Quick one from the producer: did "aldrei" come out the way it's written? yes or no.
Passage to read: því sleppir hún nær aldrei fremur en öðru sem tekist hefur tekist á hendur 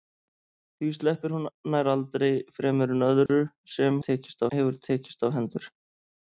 yes